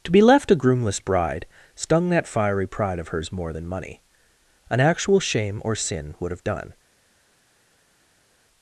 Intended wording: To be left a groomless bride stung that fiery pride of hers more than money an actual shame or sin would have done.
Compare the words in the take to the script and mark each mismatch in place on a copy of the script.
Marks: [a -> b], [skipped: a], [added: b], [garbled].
To be left a groomless bride stung that fiery pride of hers more than money an actual shame or sin would have done.